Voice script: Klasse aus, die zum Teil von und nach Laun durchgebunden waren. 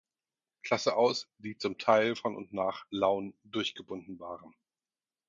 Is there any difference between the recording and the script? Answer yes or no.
no